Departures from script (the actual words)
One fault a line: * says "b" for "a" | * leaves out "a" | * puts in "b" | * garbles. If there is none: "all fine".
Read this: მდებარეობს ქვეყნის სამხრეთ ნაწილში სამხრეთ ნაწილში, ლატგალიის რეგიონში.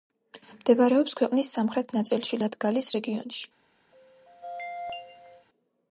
* leaves out "სამხრეთ ნაწილში"